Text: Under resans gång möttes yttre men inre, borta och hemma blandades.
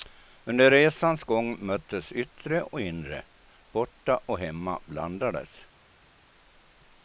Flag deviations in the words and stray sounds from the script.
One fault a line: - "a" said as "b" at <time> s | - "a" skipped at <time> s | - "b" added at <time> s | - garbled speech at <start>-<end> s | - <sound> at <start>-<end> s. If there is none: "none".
- "men" said as "och" at 2.6 s